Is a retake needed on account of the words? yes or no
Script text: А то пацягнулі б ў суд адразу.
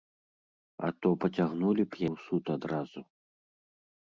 no